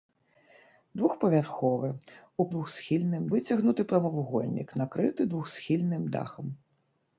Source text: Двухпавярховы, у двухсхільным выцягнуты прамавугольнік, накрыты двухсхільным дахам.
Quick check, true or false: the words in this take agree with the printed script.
true